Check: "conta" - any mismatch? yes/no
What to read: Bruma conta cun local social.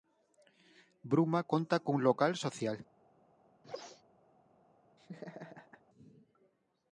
no